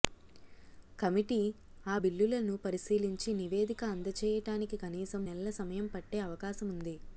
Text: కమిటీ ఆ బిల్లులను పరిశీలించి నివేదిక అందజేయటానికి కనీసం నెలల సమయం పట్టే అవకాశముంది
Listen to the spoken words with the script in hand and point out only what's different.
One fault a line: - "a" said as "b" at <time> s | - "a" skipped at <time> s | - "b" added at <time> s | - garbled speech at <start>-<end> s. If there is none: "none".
none